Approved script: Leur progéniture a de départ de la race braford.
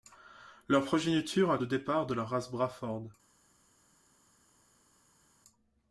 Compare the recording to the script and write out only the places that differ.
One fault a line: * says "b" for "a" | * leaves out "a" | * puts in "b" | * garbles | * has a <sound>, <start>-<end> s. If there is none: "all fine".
all fine